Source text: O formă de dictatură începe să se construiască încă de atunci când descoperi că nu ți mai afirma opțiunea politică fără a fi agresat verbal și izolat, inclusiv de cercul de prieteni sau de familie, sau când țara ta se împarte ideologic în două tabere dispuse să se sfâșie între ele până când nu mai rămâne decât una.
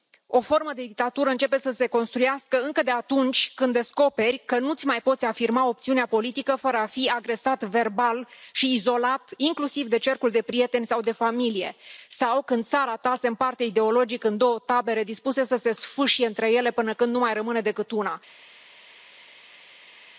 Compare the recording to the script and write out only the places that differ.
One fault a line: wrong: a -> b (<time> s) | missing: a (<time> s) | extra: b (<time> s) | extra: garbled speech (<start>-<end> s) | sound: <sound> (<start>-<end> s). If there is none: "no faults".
extra: poți (5.0 s)